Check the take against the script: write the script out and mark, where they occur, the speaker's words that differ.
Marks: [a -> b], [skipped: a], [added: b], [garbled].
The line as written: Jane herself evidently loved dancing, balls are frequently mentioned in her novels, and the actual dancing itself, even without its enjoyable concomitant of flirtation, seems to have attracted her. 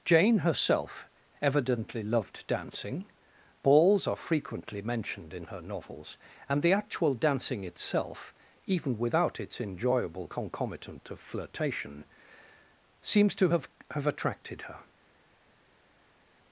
Jane herself evidently loved dancing, balls are frequently mentioned in her novels, and the actual dancing itself, even without its enjoyable concomitant of flirtation, seems to have [added: have] attracted her.